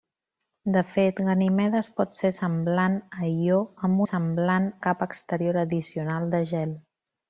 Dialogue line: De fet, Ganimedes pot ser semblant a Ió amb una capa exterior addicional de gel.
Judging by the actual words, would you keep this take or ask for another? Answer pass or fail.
fail